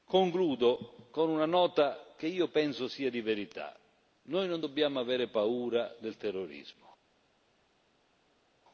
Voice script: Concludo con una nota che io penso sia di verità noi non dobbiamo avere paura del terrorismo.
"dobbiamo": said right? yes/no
yes